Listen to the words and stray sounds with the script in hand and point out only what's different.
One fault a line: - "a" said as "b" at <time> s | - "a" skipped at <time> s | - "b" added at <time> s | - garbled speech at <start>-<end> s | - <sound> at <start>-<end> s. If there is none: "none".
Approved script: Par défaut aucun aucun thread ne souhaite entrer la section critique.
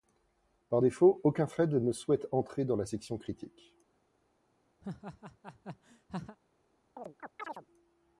- "aucun" skipped at 1.5 s
- "dans" added at 2.7 s
- laugh at 4.8-6.4 s
- chirp at 7.0-7.7 s